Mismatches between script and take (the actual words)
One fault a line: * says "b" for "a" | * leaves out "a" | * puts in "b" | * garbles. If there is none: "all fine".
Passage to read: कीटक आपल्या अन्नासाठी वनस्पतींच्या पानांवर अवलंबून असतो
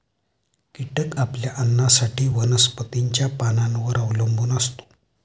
all fine